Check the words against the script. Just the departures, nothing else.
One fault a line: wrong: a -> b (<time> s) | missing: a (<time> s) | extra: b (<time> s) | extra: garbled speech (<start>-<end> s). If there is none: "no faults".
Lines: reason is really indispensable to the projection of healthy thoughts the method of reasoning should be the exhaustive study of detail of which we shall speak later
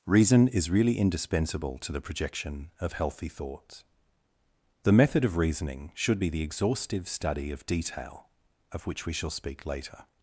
no faults